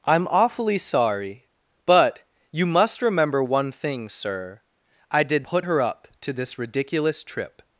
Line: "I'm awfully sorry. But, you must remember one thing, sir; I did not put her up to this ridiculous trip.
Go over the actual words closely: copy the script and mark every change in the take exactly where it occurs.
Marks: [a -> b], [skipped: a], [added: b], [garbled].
"I'm awfully sorry. But, you must remember one thing, sir; I did [skipped: not] put her up to this ridiculous trip.